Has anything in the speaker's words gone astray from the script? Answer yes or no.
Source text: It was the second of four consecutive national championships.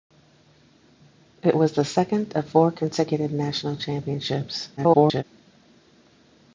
yes